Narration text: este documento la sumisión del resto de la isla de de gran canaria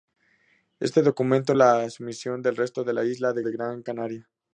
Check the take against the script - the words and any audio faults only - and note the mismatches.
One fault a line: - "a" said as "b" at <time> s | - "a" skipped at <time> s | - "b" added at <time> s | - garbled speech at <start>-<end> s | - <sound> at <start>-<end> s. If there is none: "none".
none